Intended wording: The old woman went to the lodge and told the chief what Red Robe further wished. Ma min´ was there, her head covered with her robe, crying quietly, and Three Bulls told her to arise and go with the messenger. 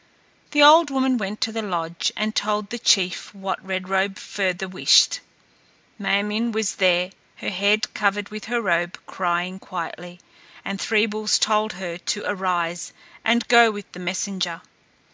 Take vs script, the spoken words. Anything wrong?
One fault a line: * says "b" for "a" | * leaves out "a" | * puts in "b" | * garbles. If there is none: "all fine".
all fine